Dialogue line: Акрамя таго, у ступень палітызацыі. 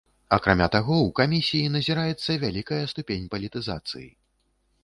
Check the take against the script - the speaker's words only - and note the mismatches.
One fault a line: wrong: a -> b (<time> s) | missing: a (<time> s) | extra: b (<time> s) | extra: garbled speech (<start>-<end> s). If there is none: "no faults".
extra: камісіі назіраецца вялікая (1.2 s)